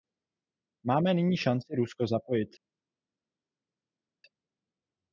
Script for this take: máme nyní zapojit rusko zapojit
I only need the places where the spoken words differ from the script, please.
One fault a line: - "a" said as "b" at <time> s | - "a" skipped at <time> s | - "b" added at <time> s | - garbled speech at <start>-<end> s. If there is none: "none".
- "zapojit" said as "šanci" at 1.4 s